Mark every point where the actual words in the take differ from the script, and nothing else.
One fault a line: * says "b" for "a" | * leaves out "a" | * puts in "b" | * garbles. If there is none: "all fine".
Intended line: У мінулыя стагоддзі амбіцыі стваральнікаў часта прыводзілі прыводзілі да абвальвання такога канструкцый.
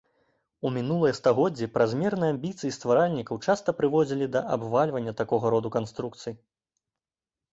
* puts in "празмерныя"
* leaves out "прыводзілі"
* puts in "роду"